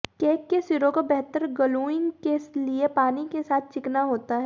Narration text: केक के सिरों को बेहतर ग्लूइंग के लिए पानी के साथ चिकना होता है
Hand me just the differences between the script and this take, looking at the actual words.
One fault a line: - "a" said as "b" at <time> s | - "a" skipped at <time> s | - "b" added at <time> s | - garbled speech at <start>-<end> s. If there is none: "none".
none